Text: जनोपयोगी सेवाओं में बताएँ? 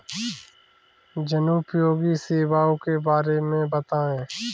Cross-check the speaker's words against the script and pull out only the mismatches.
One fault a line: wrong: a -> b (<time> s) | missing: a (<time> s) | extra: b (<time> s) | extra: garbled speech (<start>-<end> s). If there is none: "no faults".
extra: के बारे (2.9 s)